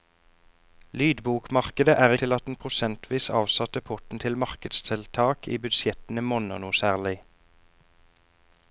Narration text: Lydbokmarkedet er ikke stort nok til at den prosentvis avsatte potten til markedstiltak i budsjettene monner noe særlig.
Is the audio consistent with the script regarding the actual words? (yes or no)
no